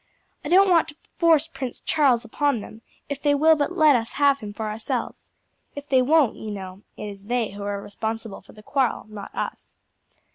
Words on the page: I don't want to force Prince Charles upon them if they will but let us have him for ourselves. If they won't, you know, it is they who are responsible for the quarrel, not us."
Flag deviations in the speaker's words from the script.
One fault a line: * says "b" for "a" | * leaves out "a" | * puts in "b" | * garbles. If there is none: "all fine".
all fine